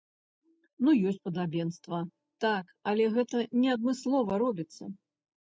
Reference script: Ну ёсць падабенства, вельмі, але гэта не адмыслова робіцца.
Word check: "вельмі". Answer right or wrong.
wrong